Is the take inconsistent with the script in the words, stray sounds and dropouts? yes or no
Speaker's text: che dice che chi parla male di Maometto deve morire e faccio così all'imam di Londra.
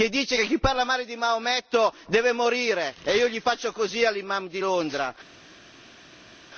yes